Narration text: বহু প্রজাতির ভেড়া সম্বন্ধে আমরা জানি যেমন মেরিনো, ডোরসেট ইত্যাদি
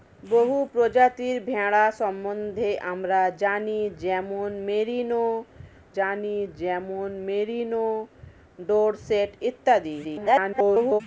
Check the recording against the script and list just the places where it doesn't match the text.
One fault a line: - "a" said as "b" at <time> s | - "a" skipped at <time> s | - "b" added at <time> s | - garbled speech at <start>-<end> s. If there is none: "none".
- "জানি যেমন মেরিনো" added at 6.0 s
- garbled speech at 10.0-11.0 s